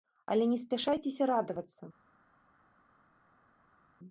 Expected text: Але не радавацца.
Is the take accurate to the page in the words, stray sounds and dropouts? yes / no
no